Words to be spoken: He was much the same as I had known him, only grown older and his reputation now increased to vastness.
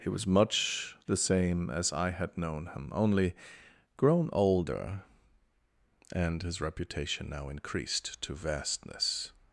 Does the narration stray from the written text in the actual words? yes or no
no